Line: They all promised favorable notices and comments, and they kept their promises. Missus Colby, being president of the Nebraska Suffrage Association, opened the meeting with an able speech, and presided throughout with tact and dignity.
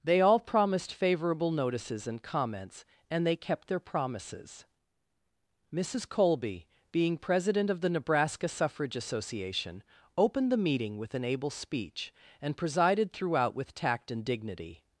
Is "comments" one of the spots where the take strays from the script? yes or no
no